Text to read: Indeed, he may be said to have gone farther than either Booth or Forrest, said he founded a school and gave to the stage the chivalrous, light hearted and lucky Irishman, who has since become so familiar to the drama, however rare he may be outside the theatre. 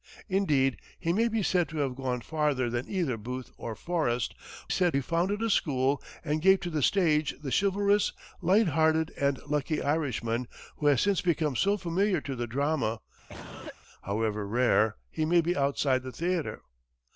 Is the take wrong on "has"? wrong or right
right